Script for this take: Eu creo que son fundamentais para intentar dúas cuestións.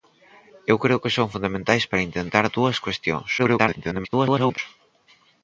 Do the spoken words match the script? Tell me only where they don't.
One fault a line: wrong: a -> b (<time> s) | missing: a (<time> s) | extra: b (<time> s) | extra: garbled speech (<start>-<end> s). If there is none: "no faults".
extra: garbled speech (3.4-4.6 s)